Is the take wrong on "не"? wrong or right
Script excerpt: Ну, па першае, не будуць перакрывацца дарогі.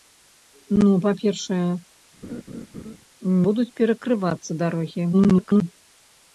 wrong